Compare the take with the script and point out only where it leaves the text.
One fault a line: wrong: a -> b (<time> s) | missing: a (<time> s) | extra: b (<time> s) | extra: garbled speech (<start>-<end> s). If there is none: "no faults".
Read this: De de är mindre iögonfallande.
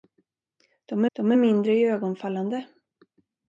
no faults